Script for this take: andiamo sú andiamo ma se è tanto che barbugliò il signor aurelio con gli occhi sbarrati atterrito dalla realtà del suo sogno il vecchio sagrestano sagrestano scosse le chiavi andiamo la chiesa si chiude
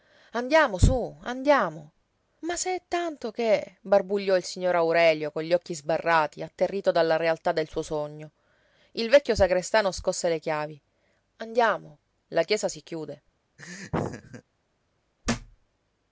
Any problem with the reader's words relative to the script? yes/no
yes